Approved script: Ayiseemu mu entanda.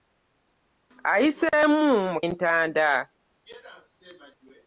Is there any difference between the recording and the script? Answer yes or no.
no